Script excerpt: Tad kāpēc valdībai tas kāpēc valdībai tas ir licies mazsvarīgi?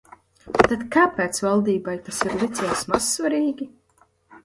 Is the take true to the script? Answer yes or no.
no